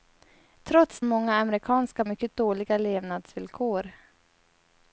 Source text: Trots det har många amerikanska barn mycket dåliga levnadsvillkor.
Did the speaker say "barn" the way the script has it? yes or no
no